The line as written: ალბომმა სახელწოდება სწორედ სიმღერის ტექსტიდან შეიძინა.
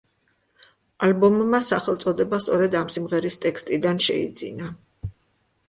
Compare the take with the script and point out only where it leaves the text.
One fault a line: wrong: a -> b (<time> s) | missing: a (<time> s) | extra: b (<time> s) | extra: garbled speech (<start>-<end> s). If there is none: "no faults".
extra: ამ (2.8 s)